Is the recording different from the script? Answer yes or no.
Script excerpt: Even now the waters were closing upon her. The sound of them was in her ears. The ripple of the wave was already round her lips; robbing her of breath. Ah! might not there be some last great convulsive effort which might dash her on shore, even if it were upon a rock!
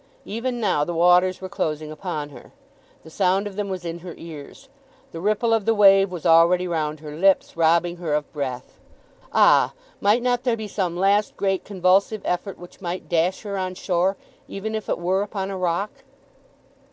no